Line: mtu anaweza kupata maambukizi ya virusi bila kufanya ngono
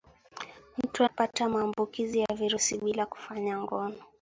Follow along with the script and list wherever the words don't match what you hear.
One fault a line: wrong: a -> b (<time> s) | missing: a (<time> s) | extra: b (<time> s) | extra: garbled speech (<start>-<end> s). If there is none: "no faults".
missing: anaweza (1.0 s)